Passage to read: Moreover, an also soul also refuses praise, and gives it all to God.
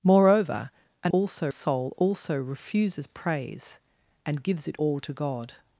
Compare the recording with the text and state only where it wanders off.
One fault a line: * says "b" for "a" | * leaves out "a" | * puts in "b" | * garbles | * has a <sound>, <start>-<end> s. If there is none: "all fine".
all fine